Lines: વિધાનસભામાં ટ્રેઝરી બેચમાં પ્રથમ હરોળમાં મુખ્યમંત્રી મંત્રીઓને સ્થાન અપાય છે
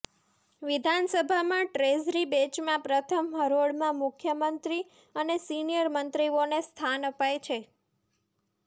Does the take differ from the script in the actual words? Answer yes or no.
yes